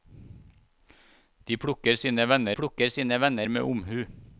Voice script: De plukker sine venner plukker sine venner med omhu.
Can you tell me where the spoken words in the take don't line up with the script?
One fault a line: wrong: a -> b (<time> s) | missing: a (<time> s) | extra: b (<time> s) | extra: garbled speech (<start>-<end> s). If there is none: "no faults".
no faults